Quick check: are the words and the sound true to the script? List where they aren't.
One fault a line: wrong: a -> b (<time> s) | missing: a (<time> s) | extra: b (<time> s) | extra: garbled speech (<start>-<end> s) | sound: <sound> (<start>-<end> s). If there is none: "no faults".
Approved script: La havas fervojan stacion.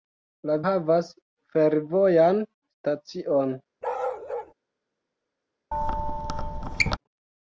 sound: bark (3.8-4.5 s)
sound: squeak (5.7-7.0 s)